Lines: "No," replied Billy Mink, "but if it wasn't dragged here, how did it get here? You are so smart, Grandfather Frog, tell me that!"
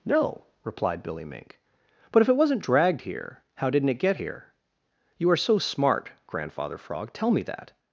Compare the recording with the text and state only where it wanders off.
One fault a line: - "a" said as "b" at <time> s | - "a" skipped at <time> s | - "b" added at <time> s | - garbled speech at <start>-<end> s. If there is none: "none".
- "did" said as "didn't" at 3.7 s